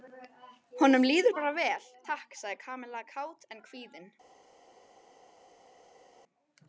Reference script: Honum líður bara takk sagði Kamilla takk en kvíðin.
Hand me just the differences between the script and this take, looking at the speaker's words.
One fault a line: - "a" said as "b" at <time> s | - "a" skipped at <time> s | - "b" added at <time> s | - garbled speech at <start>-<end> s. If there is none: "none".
- "vel" added at 1.6 s
- "takk" said as "kát" at 3.1 s